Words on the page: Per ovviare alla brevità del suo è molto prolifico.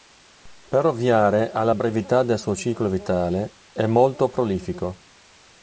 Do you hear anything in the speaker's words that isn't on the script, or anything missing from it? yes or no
yes